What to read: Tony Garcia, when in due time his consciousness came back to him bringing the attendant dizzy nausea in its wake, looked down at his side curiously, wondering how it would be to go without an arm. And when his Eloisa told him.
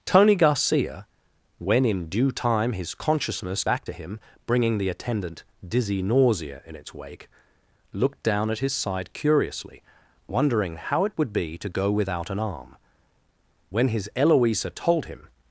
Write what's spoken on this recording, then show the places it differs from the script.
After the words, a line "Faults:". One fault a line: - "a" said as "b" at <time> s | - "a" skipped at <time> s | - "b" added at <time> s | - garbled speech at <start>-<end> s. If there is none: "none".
Tony Garcia, when in due time his consciousness back to him bringing the attendant dizzy nausea in its wake, looked down at his side curiously, wondering how it would be to go without an arm. When his Eloisa told him.
Faults:
- "came" skipped at 3.6 s
- "And" skipped at 12.7 s